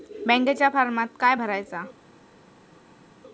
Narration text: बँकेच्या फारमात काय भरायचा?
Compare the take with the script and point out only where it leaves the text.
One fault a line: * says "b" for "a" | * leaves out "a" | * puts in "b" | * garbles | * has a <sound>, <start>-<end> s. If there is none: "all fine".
all fine